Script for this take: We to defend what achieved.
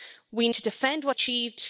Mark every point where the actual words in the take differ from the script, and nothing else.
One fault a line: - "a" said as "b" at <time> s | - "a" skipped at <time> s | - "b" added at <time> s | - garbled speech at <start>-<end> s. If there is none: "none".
none